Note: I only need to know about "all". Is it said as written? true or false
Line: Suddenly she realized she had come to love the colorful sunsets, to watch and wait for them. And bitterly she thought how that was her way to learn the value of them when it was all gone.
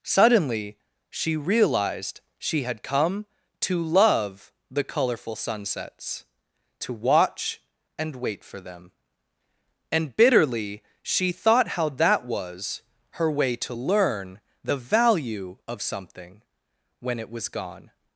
false